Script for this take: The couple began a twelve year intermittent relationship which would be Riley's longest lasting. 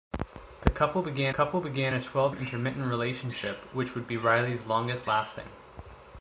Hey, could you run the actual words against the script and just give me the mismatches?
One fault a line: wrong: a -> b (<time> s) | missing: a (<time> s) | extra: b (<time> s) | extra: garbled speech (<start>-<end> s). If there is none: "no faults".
extra: couple began (1.3 s)
missing: year (2.3 s)